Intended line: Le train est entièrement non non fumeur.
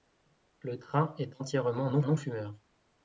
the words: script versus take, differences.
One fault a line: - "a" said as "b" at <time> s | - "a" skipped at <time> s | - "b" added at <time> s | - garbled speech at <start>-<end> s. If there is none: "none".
none